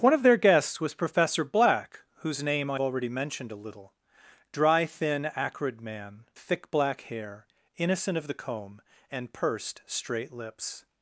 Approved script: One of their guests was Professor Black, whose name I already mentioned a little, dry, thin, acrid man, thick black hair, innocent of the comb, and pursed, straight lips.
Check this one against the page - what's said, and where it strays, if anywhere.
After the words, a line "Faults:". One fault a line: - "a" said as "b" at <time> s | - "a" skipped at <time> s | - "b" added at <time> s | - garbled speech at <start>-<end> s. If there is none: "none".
One of their guests was Professor Black, whose name I already mentioned a little, dry, thin, acrid man, thick black hair, innocent of the comb, and pursed, straight lips.
Faults:
none